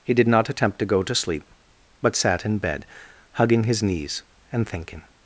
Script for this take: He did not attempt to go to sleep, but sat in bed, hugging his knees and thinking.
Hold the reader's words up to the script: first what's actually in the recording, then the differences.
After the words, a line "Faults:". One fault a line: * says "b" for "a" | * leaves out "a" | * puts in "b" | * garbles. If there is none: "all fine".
He did not attempt to go to sleep, but sat in bed, hugging his knees and thinking.
Faults:
all fine